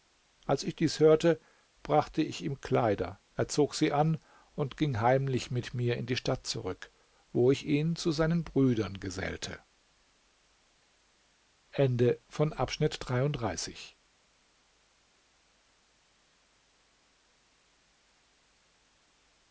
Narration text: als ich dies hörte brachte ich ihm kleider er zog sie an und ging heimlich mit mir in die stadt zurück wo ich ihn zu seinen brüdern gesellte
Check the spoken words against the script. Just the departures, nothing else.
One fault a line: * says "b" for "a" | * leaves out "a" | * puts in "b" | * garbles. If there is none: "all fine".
all fine